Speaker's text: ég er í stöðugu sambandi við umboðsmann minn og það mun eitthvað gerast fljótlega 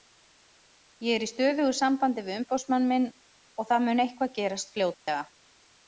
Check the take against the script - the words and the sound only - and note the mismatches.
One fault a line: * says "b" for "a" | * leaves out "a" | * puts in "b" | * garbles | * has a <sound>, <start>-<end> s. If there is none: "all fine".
* has a dropout, 4.9-5.1 s